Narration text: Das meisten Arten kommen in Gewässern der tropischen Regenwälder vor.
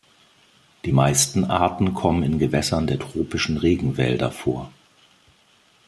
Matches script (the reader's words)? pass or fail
fail